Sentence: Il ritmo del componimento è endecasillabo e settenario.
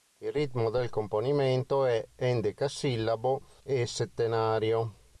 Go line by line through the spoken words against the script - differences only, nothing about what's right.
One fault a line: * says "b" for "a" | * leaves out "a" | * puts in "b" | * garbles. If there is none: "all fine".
all fine